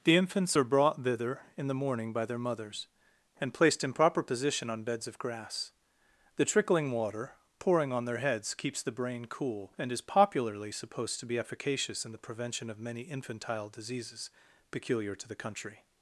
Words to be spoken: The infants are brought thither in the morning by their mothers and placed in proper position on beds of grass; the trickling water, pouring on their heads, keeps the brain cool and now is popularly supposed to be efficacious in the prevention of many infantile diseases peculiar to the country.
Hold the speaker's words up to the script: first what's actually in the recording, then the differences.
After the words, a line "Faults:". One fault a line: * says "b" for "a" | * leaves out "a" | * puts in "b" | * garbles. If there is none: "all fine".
The infants are brought thither in the morning by their mothers and placed in proper position on beds of grass; the trickling water, pouring on their heads, keeps the brain cool and is popularly supposed to be efficacious in the prevention of many infantile diseases peculiar to the country.
Faults:
* leaves out "now"